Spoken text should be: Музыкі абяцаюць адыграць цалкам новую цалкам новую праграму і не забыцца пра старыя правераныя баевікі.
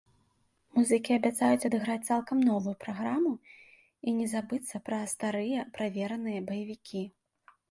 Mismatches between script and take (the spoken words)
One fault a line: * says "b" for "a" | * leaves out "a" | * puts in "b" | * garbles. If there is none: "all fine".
* leaves out "цалкам новую"